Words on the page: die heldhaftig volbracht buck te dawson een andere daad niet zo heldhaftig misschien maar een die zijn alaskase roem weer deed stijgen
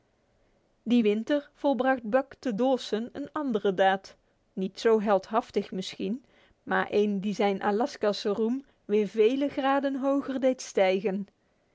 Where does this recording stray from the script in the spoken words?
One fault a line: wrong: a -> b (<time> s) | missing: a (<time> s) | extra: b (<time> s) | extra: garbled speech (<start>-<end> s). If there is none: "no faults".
wrong: heldhaftig -> winter (1.0 s)
extra: vele graden hoger (9.1 s)